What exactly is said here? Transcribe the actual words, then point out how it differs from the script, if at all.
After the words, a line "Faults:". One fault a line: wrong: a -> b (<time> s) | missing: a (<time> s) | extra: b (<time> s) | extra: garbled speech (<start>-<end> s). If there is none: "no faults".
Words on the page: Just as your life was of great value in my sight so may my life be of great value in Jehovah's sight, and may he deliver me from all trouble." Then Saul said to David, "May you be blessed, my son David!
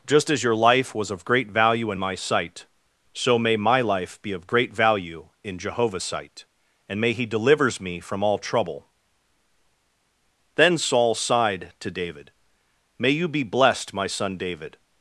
Just as your life was of great value in my sight so may my life be of great value in Jehovah's sight, and may he delivers me from all trouble." Then Saul sighed to David, "May you be blessed, my son David!
Faults:
wrong: deliver -> delivers (7.2 s)
wrong: said -> sighed (11.1 s)